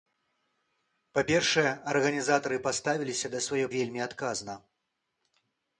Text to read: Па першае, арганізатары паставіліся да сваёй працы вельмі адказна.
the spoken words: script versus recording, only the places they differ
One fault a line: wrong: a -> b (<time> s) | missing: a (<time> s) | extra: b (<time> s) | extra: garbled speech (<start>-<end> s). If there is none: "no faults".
missing: працы (3.7 s)